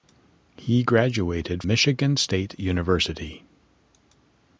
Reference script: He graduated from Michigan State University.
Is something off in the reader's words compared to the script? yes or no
yes